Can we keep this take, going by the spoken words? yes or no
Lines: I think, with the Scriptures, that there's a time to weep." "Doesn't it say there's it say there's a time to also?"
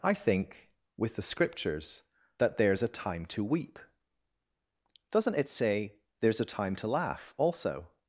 no